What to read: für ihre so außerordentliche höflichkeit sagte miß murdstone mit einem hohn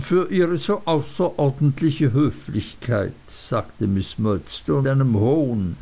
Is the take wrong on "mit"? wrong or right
wrong